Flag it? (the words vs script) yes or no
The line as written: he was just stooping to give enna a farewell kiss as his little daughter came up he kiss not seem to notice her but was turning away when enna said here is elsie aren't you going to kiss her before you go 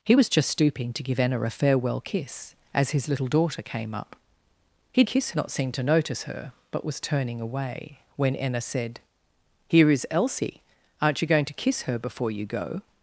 no